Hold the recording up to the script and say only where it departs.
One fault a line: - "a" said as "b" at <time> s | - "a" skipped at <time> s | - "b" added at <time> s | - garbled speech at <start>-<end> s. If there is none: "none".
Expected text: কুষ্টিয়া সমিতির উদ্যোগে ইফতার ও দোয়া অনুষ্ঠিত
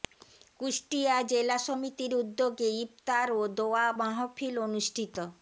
- "জেলা" added at 1.3 s
- "মাহফিল" added at 4.0 s